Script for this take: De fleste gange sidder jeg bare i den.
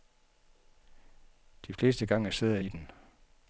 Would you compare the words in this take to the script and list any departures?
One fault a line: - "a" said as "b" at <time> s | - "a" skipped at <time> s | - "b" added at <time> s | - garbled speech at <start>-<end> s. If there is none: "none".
- "jeg bare" skipped at 2.6 s